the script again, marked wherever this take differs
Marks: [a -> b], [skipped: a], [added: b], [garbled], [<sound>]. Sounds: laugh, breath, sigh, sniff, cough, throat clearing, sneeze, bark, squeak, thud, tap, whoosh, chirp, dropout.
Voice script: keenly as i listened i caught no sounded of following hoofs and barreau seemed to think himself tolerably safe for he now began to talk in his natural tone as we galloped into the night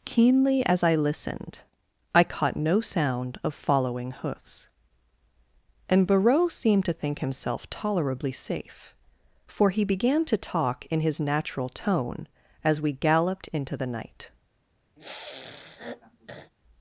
keenly as i listened i caught no [sounded -> sound] of following hoofs and barreau seemed to think himself tolerably safe for he [skipped: now] began to talk in his natural tone as we galloped into the night [sniff]